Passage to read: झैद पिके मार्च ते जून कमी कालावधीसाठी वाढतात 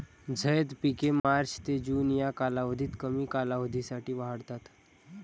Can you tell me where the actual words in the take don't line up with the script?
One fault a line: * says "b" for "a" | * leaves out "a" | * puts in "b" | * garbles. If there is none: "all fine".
* puts in "या कालावधीत"